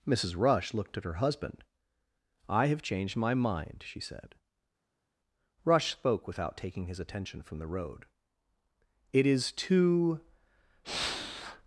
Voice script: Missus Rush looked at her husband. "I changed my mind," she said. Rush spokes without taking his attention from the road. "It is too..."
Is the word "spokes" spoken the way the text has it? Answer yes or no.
no